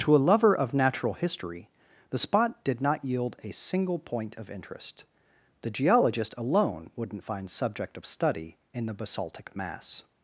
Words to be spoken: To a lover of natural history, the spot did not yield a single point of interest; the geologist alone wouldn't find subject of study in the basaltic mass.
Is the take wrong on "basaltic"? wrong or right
right